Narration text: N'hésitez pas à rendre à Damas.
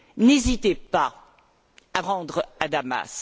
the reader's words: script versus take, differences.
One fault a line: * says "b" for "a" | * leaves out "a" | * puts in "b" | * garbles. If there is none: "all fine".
all fine